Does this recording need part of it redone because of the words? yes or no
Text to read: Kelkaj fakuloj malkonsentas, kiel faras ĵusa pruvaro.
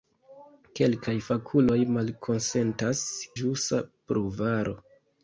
yes